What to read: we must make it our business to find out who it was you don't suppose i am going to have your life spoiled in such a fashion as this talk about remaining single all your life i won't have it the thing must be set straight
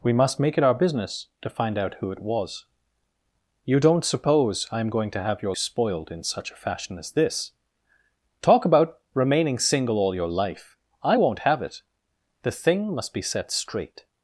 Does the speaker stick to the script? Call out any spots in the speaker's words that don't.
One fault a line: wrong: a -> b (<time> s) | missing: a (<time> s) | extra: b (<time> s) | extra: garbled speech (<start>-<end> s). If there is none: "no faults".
missing: life (5.5 s)